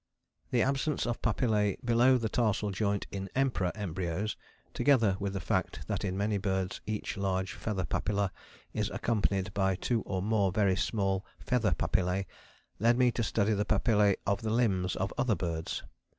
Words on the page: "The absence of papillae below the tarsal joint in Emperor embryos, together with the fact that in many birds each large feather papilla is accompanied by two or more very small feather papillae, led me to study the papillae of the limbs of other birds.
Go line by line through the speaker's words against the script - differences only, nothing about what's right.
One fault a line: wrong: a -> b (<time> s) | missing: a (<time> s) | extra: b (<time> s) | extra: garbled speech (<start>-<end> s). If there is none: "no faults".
no faults